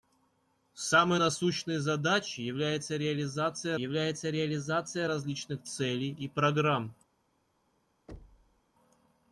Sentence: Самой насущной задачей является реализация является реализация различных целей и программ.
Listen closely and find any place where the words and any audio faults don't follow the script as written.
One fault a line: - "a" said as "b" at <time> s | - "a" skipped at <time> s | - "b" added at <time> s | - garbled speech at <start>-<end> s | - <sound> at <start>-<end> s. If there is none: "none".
- thud at 8.1-8.6 s